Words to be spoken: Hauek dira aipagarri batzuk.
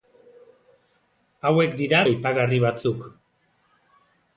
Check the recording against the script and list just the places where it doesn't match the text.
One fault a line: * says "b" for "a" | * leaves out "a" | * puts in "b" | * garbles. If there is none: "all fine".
all fine